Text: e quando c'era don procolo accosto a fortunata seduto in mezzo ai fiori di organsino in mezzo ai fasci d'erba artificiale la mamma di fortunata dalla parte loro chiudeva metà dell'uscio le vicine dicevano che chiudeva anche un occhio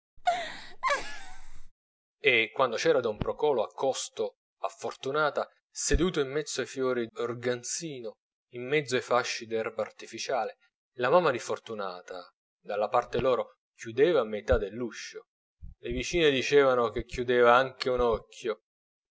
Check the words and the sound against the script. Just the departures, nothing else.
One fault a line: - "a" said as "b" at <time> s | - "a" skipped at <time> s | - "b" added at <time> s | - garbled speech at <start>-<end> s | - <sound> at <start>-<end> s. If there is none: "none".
- laugh at 0.2-1.7 s
- "di" skipped at 7.1 s